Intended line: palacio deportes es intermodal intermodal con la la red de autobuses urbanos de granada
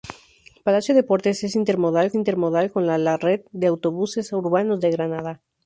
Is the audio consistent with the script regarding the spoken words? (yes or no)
yes